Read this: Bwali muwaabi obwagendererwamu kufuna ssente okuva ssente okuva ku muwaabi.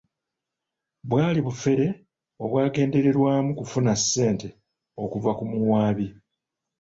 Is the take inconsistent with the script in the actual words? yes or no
yes